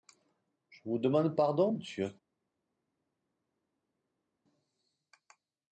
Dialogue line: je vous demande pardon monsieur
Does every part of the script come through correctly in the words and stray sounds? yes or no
yes